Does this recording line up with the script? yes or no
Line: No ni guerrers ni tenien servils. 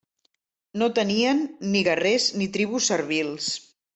no